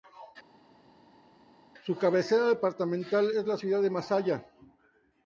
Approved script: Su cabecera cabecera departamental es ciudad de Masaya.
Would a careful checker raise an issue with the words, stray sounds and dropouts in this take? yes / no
yes